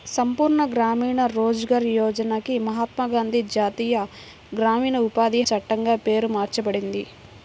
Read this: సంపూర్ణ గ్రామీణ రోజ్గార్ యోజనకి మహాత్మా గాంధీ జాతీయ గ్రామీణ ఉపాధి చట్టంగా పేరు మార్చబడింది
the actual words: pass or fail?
pass